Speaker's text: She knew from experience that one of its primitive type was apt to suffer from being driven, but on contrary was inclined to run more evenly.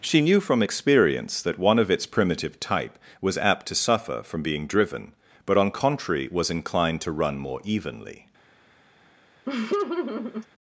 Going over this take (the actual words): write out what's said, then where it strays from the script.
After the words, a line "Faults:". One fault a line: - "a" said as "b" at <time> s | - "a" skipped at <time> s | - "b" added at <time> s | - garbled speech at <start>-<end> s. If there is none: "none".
She knew from experience that one of its primitive type was apt to suffer from being driven, but on contrary was inclined to run more evenly.
Faults:
none